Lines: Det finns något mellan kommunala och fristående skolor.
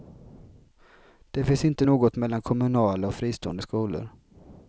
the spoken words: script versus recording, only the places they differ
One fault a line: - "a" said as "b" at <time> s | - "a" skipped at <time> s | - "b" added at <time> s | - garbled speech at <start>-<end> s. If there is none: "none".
- "inte" added at 1.6 s